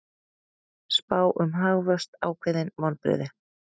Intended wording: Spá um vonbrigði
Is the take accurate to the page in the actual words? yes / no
no